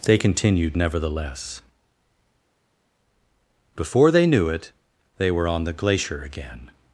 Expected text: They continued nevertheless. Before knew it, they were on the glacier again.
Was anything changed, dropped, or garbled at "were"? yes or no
no